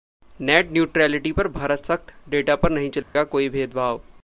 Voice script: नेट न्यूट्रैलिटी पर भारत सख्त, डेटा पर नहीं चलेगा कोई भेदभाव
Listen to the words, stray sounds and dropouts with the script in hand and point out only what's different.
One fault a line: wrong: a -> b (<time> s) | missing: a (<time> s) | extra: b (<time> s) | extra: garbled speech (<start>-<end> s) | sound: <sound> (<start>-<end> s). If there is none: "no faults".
sound: dropout (3.0-3.2 s)